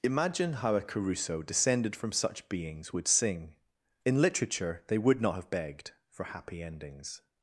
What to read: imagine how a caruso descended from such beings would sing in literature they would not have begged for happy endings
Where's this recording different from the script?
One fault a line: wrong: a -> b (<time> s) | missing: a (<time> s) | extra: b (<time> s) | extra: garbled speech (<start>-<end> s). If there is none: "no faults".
no faults